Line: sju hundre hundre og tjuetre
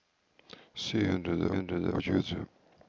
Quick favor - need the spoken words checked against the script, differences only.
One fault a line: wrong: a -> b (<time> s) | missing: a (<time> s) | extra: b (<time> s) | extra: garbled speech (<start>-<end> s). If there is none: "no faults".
no faults